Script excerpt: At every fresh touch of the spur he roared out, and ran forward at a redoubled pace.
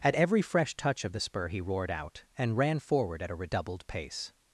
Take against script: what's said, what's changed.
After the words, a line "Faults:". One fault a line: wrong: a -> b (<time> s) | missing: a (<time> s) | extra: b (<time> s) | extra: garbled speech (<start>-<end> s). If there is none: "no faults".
At every fresh touch of the spur he roared out, and ran forward at a redoubled pace.
Faults:
no faults